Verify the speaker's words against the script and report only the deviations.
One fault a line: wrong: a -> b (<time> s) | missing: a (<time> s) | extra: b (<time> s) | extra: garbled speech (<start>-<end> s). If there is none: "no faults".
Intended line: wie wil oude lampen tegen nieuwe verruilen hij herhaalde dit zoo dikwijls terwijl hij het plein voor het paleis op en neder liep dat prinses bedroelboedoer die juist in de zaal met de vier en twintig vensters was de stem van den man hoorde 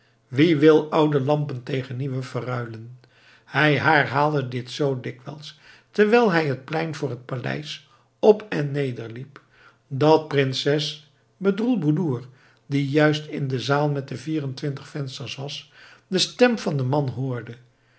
no faults